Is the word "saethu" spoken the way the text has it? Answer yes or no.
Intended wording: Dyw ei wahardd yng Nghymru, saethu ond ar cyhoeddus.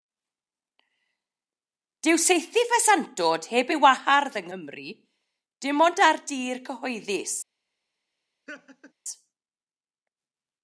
no